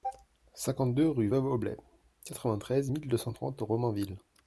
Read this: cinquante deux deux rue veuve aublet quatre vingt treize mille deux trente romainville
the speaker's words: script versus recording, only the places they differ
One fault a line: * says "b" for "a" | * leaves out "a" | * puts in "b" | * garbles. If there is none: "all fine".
* leaves out "deux"
* puts in "cent"